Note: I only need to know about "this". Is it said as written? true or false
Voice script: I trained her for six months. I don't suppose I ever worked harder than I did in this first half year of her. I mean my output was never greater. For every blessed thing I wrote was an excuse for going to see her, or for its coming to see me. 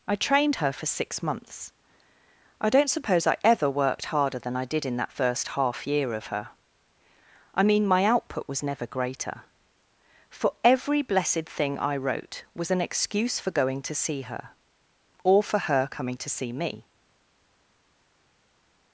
false